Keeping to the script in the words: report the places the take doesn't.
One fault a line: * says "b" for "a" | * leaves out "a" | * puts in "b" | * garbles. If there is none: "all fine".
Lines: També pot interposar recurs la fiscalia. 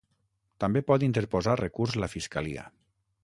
all fine